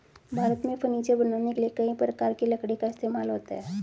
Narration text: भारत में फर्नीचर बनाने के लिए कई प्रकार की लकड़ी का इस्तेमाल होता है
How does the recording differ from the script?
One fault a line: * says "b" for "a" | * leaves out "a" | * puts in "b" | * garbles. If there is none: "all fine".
all fine